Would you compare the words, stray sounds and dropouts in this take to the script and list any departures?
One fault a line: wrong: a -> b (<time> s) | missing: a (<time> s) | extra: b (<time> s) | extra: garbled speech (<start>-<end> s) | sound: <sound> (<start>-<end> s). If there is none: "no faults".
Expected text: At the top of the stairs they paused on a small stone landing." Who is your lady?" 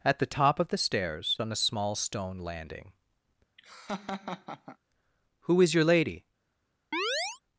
missing: they paused (1.4 s)
sound: laugh (3.6-4.8 s)
sound: chirp (6.9-7.4 s)